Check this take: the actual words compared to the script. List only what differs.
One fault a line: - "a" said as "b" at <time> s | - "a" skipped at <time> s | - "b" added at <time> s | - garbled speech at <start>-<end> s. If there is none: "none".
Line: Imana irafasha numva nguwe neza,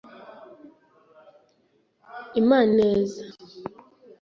- "irafasha numva nguwe" skipped at 2.7 s